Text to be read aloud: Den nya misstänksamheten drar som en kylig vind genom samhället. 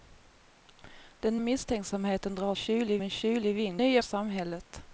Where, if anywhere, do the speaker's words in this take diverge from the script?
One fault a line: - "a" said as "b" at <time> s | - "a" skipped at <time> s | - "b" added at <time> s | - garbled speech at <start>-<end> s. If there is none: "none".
- "nya" skipped at 1.4 s
- "som" said as "kylig" at 2.5 s
- "genom" said as "nya" at 3.8 s